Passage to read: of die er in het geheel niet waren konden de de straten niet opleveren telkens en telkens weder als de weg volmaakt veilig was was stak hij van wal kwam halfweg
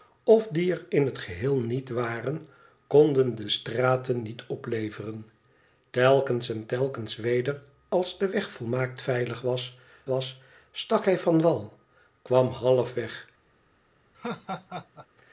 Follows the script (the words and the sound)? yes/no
no